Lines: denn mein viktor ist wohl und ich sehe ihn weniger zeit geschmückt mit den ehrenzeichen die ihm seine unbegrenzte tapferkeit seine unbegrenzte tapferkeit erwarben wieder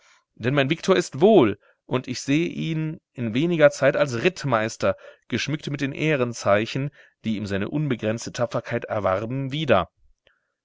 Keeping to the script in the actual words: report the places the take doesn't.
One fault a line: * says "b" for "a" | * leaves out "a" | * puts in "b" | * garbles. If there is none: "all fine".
* puts in "in"
* puts in "als rittmeister"
* leaves out "seine unbegrenzte tapferkeit"